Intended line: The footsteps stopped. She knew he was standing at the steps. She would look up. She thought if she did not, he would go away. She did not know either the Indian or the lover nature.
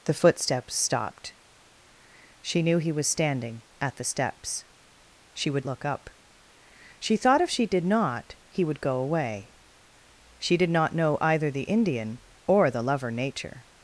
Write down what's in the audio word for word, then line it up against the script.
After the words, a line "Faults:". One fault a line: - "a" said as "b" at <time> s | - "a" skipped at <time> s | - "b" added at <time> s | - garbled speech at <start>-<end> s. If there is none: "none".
The footsteps stopped. She knew he was standing at the steps. She would look up. She thought if she did not, he would go away. She did not know either the Indian or the lover nature.
Faults:
none